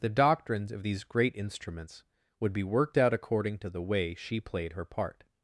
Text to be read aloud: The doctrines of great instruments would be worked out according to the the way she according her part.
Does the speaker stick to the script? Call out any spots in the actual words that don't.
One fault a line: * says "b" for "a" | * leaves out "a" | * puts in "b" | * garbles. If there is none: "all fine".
* puts in "these"
* leaves out "the"
* says "played" for "according"